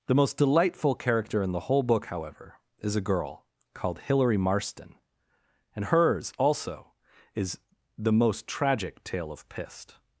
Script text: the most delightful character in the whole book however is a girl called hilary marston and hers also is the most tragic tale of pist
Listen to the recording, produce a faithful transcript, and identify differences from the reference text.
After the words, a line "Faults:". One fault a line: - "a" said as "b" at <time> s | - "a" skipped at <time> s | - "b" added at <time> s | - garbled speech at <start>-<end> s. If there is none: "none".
the most delightful character in the whole book however is a girl called hilary marston and hers also is the most tragic tale of pist
Faults:
none